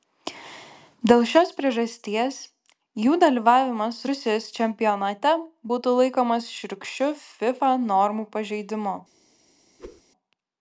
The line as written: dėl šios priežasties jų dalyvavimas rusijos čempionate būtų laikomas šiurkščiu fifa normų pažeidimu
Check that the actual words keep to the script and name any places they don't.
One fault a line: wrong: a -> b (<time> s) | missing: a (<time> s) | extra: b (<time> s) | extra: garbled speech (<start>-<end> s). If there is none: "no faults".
no faults